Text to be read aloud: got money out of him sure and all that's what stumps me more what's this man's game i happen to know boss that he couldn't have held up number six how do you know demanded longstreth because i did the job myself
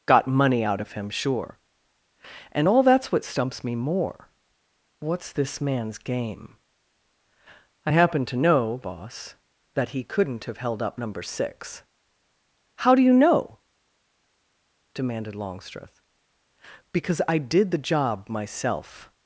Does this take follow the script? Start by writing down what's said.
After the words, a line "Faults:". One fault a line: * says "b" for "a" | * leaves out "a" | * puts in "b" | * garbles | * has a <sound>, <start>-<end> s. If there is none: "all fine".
got money out of him sure and all that's what stumps me more what's this man's game i happen to know boss that he couldn't have held up number six how do you know demanded longstreth because i did the job myself
Faults:
all fine